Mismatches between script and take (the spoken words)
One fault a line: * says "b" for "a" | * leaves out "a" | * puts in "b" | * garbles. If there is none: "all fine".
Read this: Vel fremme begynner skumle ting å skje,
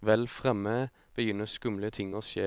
all fine